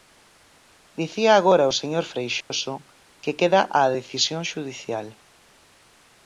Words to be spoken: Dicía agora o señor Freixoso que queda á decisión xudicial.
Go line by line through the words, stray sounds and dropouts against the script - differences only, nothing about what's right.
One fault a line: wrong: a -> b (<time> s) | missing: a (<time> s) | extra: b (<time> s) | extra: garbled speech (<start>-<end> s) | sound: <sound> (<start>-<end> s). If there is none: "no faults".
sound: dropout (2.4-2.5 s)